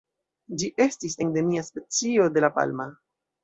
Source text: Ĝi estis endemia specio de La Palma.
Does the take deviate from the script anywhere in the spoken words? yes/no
no